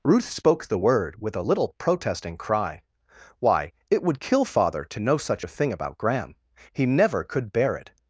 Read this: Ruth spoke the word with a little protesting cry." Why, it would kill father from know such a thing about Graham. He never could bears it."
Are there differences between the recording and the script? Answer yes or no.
yes